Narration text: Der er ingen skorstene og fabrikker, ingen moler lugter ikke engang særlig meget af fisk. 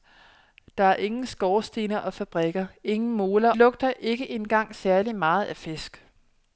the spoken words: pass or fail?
pass